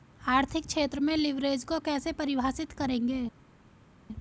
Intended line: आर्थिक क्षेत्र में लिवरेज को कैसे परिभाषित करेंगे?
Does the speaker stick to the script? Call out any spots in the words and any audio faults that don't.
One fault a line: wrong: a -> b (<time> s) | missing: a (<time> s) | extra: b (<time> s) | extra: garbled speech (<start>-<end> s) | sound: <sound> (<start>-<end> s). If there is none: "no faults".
no faults